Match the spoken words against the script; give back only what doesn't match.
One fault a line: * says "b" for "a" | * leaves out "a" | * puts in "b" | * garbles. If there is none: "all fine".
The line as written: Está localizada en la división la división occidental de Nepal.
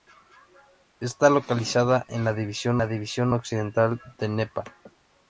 all fine